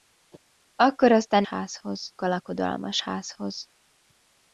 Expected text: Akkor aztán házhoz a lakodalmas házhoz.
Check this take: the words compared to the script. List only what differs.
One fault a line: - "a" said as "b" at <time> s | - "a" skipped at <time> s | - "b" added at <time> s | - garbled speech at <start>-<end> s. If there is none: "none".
none